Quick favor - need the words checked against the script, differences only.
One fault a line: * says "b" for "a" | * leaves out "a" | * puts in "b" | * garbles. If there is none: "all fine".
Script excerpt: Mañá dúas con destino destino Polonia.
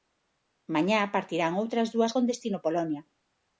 * puts in "partirán outras"
* leaves out "destino"